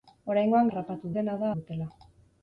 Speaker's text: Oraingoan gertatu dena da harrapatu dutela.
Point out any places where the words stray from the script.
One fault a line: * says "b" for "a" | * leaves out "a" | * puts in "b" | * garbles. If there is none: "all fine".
* says "harrapatu" for "gertatu"
* leaves out "harrapatu"